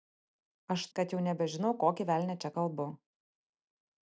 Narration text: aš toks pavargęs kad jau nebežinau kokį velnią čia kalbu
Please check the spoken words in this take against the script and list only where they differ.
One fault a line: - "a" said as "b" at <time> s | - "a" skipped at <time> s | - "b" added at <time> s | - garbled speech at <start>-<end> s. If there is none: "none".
- "toks pavargęs" skipped at 0.8 s